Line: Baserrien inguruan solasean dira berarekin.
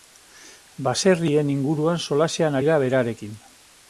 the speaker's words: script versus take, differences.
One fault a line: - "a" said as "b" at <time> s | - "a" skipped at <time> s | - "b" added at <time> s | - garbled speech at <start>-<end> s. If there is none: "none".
none